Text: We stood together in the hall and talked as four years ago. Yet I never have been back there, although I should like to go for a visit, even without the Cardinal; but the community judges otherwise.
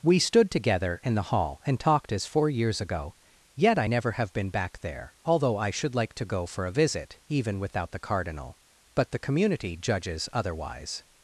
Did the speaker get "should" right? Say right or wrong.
right